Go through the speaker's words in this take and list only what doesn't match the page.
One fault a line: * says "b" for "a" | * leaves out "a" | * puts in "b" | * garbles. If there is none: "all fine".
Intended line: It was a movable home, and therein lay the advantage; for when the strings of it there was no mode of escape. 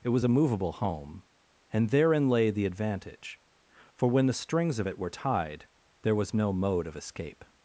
* puts in "were tied"